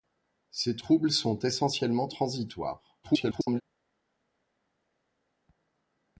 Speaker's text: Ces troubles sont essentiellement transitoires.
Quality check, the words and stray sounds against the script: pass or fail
fail